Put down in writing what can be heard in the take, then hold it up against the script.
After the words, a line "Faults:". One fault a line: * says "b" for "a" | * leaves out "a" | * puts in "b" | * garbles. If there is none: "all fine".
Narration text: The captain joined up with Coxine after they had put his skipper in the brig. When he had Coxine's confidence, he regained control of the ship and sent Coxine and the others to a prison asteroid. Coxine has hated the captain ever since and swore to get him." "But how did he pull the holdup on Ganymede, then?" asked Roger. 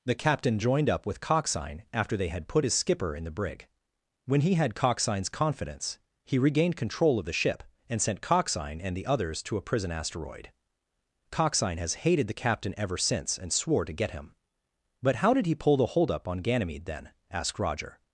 The captain joined up with Coxine after they had put his skipper in the brig. When he had Coxine's confidence, he regained control of the ship and sent Coxine and the others to a prison asteroid. Coxine has hated the captain ever since and swore to get him." "But how did he pull the holdup on Ganymede, then?" asked Roger.
Faults:
all fine